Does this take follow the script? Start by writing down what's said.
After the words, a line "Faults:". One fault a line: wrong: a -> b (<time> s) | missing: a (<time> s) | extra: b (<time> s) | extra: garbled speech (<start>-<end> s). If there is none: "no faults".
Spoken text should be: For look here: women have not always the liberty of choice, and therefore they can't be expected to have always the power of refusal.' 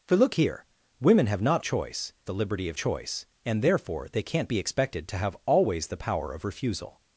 For look here: women have not choice the liberty of choice, and therefore they can't be expected to have always the power of refusal.'
Faults:
wrong: always -> choice (1.6 s)